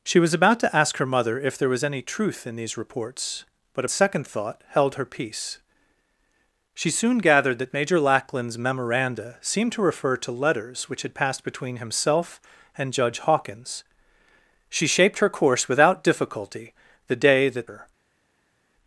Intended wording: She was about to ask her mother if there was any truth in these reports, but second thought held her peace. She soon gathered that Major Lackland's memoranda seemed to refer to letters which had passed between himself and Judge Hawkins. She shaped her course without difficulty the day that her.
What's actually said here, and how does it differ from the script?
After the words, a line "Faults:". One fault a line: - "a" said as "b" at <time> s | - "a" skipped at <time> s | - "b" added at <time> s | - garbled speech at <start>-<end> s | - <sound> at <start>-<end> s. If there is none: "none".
She was about to ask her mother if there was any truth in these reports, but second thought held her peace. She soon gathered that Major Lackland's memoranda seemed to refer to letters which had passed between himself and Judge Hawkins. She shaped her course without difficulty the day that her.
Faults:
none